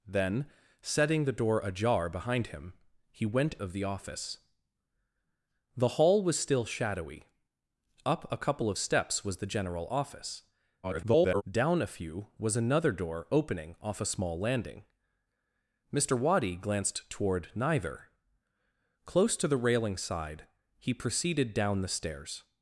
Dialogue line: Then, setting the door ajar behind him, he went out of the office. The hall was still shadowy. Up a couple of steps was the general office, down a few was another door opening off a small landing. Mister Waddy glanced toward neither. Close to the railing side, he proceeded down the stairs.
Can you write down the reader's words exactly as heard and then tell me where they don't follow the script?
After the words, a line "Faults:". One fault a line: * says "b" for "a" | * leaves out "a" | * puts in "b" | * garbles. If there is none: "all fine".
Then, setting the door ajar behind him, he went of the office. The hall was still shadowy. Up a couple of steps was the general office, [garbled] down a few was another door opening off a small landing. Mister Waddy glanced toward neither. Close to the railing side, he proceeded down the stairs.
Faults:
* leaves out "out"
* garbles